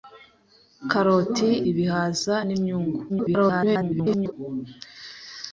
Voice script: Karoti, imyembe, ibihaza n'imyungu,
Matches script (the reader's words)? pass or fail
fail